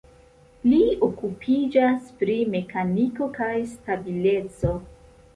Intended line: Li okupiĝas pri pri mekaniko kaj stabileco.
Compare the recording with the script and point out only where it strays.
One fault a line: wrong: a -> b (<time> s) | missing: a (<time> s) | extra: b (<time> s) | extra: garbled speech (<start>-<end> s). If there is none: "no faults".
missing: pri (2.4 s)